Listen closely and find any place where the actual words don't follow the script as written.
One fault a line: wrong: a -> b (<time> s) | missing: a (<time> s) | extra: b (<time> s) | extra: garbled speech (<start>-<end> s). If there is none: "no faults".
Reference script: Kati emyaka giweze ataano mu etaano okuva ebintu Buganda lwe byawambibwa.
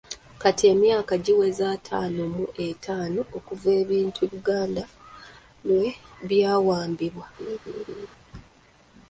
no faults